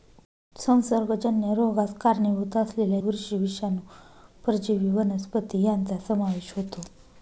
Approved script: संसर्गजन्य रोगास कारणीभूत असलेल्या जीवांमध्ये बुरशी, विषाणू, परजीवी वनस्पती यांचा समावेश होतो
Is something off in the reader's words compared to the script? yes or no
yes